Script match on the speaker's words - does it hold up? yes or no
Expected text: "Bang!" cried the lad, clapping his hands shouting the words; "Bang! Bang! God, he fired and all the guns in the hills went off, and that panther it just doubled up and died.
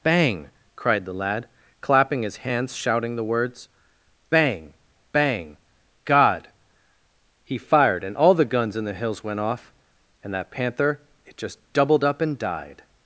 yes